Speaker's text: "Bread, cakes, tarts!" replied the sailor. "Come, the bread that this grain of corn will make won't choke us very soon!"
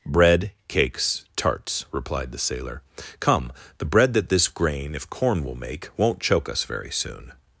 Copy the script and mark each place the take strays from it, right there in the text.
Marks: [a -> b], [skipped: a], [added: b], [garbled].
"Bread, cakes, tarts!" replied the sailor. "Come, the bread that this grain [of -> if] corn will make won't choke us very soon!"